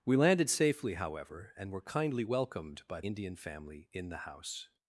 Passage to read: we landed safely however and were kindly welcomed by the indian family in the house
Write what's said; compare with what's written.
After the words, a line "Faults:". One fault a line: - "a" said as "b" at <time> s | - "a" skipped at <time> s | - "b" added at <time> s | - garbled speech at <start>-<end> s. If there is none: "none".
we landed safely however and were kindly welcomed by indian family in the house
Faults:
- "the" skipped at 3.0 s